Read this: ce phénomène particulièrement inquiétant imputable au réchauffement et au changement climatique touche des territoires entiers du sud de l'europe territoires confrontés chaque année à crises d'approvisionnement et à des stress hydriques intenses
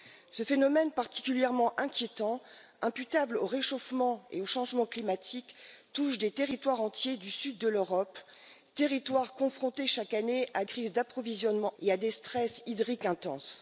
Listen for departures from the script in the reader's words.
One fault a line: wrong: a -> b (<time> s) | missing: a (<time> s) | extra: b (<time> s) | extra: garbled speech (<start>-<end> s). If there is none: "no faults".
no faults